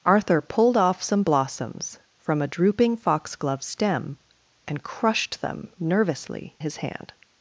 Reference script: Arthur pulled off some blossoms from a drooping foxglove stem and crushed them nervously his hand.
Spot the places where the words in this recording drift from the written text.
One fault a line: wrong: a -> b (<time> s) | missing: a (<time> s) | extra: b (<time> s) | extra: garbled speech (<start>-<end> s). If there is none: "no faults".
no faults